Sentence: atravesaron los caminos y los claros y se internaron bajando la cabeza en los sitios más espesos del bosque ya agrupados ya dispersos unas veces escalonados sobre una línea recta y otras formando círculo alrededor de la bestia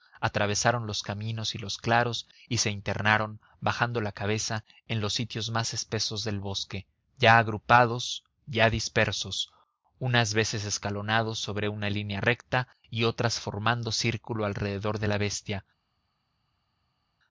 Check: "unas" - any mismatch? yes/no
no